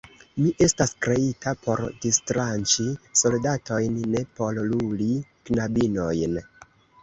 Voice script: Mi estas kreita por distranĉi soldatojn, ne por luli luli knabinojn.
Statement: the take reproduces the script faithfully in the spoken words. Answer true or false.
false